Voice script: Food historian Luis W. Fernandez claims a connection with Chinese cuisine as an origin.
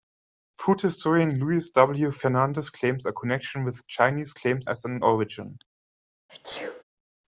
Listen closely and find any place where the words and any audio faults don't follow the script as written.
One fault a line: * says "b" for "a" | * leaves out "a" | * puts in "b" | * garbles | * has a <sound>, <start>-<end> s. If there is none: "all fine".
* says "claims" for "cuisine"
* has a sneeze, 6.3-6.8 s